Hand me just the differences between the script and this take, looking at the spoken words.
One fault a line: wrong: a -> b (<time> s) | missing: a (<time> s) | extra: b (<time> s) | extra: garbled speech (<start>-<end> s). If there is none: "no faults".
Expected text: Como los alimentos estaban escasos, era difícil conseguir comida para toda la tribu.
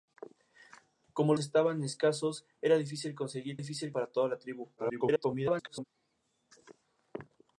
missing: los alimentos (1.4 s)
wrong: comida -> difícil (3.6 s)
extra: garbled speech (4.8-5.8 s)